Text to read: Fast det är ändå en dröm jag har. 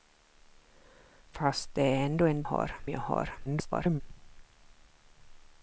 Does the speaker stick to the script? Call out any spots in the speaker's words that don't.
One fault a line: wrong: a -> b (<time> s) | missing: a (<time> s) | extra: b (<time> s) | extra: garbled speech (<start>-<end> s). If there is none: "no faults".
wrong: dröm -> har (2.4 s)
extra: garbled speech (3.4-4.0 s)